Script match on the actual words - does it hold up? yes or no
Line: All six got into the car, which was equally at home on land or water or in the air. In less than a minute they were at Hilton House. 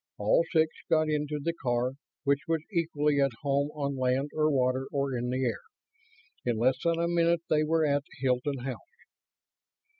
yes